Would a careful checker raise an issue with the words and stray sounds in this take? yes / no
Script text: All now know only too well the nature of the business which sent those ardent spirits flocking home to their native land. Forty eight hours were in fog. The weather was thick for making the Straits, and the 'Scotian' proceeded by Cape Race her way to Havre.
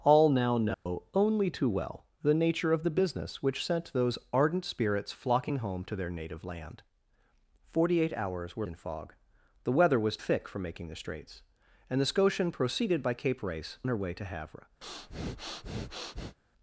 yes